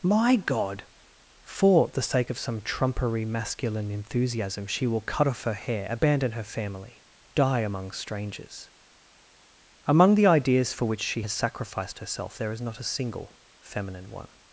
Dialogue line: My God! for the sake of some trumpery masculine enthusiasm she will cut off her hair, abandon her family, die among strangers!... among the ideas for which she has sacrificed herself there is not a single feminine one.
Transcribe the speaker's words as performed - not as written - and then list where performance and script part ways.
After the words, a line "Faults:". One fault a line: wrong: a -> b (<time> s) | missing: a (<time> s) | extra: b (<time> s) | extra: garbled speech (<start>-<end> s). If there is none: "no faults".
My God! for the sake of some trumpery masculine enthusiasm she will cut off her hair, abandon her family, die among strangers!... among the ideas for which she has sacrificed herself there is not a single feminine one.
Faults:
no faults